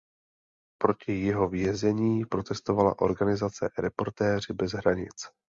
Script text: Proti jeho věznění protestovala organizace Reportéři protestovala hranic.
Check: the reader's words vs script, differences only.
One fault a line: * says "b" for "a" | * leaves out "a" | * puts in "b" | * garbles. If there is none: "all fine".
* says "bez" for "protestovala"